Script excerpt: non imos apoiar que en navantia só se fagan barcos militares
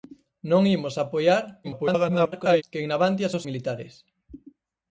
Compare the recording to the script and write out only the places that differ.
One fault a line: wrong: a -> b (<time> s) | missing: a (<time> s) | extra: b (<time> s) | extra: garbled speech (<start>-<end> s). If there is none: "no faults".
extra: garbled speech (1.6-2.6 s)
missing: se fagan barcos (3.4 s)